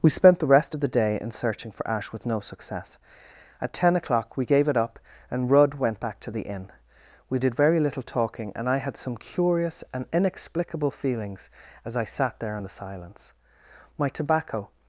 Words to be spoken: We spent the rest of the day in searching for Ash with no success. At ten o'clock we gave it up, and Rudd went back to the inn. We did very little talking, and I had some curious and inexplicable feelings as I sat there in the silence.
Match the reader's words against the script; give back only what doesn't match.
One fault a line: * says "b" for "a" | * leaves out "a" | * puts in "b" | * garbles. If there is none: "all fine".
* puts in "My tobacco"